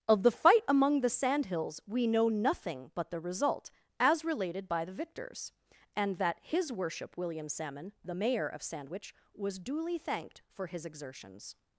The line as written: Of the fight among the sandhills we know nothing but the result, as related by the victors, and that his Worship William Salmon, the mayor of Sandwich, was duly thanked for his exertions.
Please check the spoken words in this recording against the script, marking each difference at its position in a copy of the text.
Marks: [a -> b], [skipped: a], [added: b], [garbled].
Of the fight among the sandhills we know nothing but the result, as related by the victors, and that his Worship William Salmon, the mayor of Sandwich, was duly thanked for his exertions.